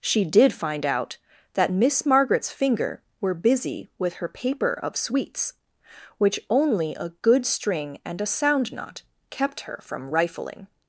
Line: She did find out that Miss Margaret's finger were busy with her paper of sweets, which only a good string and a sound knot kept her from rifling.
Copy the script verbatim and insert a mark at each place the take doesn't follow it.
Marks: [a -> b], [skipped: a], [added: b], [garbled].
She did find out that Miss Margaret's finger were busy with her paper of sweets, which only a good string and a sound knot kept her from rifling.